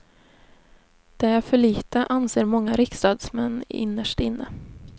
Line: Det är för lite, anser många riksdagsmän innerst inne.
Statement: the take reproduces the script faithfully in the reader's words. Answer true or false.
true